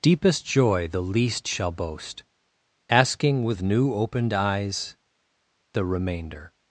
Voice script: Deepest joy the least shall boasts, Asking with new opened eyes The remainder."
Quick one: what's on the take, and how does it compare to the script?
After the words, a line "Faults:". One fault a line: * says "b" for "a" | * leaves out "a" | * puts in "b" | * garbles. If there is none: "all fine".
Deepest joy the least shall boast, Asking with new opened eyes The remainder."
Faults:
* says "boast" for "boasts"